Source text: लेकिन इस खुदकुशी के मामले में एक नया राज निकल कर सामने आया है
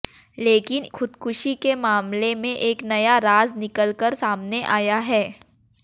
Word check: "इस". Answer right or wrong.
wrong